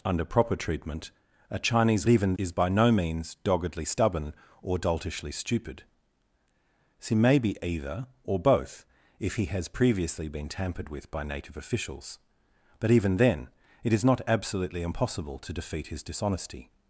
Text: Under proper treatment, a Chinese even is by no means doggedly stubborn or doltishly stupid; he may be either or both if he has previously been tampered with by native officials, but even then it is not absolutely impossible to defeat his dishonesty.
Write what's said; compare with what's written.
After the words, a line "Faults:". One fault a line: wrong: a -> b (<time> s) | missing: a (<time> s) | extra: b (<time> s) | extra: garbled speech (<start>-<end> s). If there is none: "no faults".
Under proper treatment, a Chinese even is by no means doggedly stubborn or doltishly stupid; he may be either or both if he has previously been tampered with by native officials, but even then it is not absolutely impossible to defeat his dishonesty.
Faults:
no faults